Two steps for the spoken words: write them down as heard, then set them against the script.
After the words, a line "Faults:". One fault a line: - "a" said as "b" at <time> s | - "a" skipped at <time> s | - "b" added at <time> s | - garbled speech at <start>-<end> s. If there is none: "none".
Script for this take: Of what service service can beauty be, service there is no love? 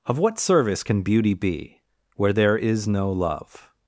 Of what service can beauty be, where there is no love?
Faults:
- "service" skipped at 0.8 s
- "service" said as "where" at 2.1 s